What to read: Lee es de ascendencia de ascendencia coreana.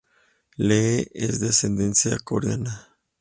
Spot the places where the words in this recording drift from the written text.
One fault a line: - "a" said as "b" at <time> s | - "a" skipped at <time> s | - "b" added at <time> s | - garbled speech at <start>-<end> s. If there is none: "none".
- "de ascendencia" skipped at 2.2 s